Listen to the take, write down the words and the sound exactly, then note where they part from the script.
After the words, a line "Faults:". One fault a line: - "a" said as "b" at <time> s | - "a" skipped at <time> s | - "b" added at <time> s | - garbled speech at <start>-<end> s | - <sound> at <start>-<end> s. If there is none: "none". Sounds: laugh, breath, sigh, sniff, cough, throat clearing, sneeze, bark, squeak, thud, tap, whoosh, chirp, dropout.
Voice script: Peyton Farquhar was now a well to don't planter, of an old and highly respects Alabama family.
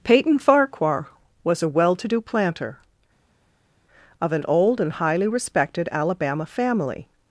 Peyton Farquhar was a well to do planter, of an old and highly respected Alabama family.
Faults:
- "now" skipped at 1.6 s
- "don't" said as "do" at 2.1 s
- "respects" said as "respected" at 5.3 s